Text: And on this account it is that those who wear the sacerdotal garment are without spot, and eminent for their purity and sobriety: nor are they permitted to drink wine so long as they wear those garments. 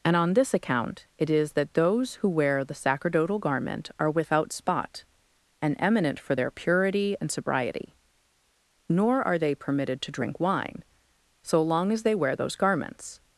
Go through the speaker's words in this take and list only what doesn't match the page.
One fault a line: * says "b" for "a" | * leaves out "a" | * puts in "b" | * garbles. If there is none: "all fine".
all fine